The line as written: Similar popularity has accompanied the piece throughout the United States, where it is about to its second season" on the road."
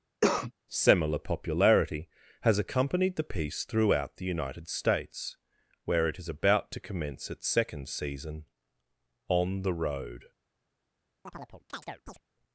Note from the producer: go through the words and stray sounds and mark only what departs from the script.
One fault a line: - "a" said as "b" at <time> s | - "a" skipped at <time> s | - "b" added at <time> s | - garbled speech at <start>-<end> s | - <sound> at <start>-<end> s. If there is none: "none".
- cough at 0.2-0.5 s
- "commence" added at 6.8 s
- chirp at 11.3-12.2 s